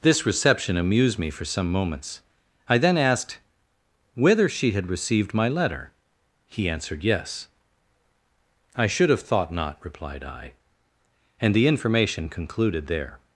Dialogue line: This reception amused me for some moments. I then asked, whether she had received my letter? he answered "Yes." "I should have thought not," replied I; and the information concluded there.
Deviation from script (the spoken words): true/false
false